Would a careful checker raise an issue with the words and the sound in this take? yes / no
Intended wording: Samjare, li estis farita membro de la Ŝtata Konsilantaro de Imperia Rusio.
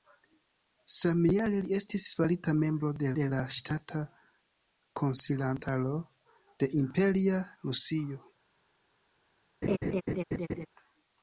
yes